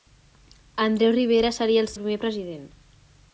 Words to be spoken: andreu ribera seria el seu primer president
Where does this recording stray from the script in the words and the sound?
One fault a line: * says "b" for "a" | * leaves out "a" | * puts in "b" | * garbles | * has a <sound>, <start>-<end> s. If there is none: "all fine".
* leaves out "seu"